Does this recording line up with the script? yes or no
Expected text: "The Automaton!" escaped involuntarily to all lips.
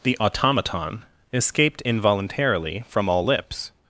no